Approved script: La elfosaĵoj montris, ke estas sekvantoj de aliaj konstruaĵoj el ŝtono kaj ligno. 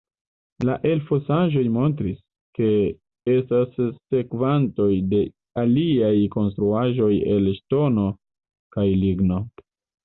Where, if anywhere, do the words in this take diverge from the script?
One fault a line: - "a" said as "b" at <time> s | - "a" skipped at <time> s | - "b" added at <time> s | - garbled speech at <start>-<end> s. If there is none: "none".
none